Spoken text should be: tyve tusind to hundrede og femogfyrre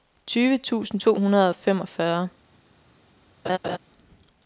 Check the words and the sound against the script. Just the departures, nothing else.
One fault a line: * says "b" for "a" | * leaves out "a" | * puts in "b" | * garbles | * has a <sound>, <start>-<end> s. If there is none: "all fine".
* has a laugh, 3.4-3.8 s